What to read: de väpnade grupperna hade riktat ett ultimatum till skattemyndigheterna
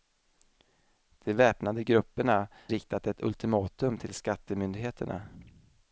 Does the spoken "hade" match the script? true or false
false